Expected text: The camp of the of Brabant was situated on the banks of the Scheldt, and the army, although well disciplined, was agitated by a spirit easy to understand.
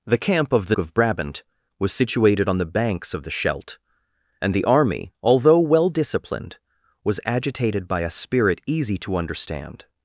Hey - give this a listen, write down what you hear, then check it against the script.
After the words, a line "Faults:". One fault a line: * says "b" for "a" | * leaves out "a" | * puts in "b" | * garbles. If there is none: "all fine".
The camp of the of Brabant was situated on the banks of the Scheldt, and the army, although well disciplined, was agitated by a spirit easy to understand.
Faults:
all fine